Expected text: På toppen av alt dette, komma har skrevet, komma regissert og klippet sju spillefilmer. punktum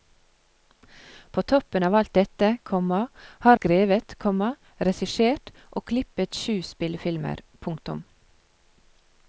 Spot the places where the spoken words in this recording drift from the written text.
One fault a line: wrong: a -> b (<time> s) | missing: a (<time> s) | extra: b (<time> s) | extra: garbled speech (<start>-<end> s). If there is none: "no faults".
no faults